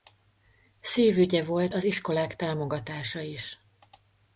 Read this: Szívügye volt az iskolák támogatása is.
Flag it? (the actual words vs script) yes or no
no